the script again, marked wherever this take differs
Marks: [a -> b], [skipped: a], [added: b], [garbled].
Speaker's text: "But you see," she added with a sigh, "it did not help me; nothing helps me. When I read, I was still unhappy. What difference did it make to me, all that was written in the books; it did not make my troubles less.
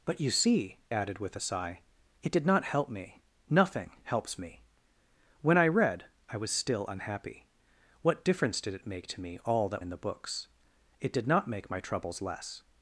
"But you see," [skipped: she] added with a sigh, "it did not help me; nothing helps me. When I read, I was still unhappy. What difference did it make to me, all that [skipped: was written] in the books; it did not make my troubles less.